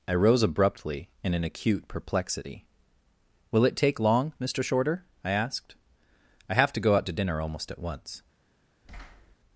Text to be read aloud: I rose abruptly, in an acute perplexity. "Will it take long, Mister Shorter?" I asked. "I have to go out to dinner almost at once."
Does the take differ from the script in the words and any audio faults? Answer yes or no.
yes